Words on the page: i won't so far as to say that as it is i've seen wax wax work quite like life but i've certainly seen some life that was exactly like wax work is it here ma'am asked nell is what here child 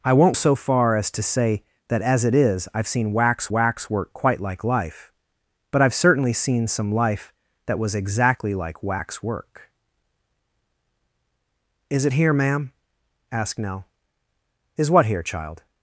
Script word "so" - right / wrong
right